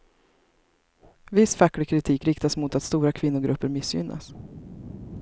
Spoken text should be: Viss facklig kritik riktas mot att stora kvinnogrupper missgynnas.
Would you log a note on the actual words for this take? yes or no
no